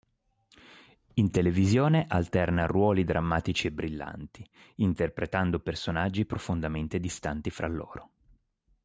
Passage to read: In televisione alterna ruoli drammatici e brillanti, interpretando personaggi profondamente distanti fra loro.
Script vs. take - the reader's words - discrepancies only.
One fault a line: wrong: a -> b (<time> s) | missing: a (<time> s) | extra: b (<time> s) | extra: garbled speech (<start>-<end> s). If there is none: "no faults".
no faults